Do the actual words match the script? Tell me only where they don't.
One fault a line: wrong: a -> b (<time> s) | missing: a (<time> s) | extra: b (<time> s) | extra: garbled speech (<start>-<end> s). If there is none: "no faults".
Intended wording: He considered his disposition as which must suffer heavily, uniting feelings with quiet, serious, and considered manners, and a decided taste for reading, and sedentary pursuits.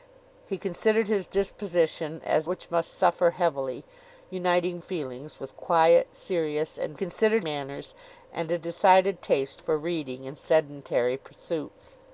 no faults